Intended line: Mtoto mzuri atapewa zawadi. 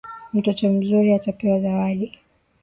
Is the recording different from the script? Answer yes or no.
no